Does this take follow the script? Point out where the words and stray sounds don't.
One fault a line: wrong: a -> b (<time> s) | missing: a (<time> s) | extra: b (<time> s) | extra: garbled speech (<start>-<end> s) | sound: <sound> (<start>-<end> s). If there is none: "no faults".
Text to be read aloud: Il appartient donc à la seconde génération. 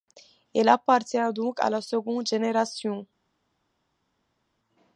no faults